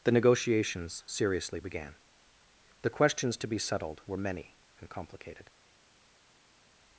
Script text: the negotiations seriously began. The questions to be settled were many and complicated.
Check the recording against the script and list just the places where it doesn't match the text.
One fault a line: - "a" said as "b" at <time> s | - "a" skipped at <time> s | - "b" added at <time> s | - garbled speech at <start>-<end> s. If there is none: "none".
none